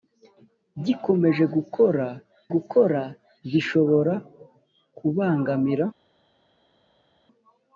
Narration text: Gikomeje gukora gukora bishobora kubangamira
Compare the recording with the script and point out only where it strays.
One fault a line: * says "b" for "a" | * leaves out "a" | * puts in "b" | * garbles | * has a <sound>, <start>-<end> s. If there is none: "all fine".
all fine